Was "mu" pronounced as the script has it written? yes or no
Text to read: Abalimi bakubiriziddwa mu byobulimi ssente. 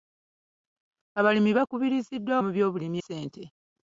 yes